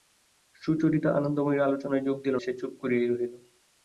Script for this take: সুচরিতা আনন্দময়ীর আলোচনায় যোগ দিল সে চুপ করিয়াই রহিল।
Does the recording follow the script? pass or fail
pass